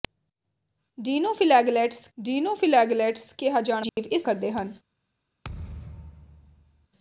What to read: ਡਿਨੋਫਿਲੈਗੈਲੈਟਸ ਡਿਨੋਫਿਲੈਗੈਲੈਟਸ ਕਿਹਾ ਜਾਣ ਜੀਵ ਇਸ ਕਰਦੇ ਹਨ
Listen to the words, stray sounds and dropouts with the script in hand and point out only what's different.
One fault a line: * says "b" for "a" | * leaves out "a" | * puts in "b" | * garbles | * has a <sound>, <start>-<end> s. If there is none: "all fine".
* has a dropout, 3.9-4.0 s
* has a thud, 5.4-6.9 s